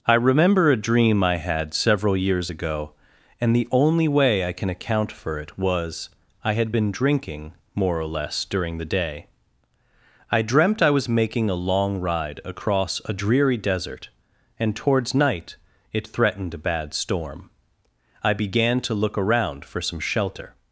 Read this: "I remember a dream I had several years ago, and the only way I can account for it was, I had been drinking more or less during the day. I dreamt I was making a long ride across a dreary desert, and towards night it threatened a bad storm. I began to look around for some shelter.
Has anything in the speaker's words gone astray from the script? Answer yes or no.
no